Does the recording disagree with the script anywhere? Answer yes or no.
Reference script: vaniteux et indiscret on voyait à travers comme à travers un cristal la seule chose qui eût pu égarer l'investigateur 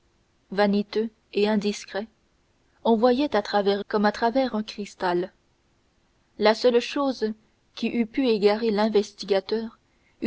no